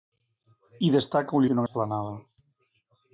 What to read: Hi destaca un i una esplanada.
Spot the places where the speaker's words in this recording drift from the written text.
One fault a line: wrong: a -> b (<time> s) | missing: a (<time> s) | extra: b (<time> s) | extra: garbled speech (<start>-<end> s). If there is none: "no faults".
no faults